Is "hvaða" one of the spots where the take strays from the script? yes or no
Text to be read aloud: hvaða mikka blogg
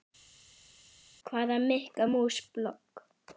no